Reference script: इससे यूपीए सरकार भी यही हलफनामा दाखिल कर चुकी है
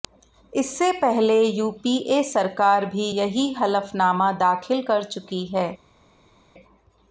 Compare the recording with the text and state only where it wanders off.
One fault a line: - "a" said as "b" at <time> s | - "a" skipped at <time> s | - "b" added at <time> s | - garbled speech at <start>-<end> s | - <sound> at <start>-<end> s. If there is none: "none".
- "पहले" added at 0.9 s